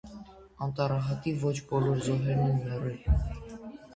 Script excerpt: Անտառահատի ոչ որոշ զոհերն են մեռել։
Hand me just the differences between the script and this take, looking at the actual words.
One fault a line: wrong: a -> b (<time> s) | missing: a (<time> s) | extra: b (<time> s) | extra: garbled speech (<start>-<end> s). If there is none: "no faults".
wrong: որոշ -> բոլոր (1.7 s)